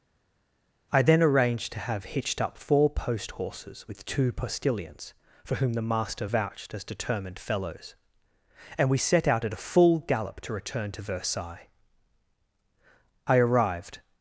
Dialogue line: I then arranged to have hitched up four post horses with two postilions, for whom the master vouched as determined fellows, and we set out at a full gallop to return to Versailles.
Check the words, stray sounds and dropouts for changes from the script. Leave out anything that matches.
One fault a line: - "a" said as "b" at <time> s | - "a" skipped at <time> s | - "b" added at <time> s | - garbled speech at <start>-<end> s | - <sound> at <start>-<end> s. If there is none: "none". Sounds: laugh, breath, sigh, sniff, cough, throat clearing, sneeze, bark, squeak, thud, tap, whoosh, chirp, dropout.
- "I arrived" added at 13.3 s